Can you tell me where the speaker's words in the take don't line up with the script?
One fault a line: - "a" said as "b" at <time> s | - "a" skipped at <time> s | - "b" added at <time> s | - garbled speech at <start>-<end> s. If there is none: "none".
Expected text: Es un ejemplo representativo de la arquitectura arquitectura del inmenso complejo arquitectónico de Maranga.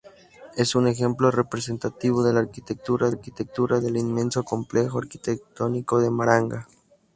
none